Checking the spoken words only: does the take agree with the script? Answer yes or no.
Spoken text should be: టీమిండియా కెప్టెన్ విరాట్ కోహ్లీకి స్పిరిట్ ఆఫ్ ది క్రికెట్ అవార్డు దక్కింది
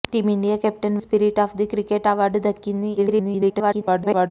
no